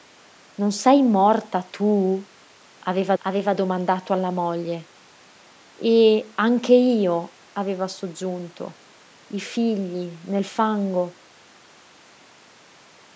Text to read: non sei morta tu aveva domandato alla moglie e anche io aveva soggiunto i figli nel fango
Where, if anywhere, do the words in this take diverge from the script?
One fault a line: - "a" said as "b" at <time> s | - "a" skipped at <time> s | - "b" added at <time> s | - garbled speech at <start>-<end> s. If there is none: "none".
- "aveva" added at 3.2 s